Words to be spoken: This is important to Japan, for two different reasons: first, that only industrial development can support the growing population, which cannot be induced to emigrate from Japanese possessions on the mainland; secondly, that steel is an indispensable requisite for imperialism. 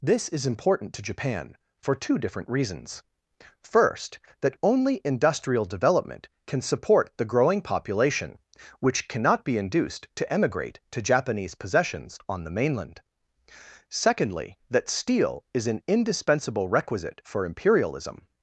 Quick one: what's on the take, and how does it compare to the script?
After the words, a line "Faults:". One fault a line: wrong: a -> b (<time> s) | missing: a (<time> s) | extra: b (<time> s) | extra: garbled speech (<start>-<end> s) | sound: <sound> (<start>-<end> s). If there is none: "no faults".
This is important to Japan, for two different reasons: first, that only industrial development can support the growing population, which cannot be induced to emigrate to Japanese possessions on the mainland; secondly, that steel is an indispensable requisite for imperialism.
Faults:
wrong: from -> to (10.9 s)